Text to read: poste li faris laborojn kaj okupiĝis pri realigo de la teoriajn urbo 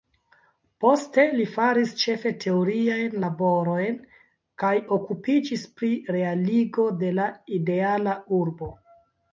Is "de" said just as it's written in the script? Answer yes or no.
yes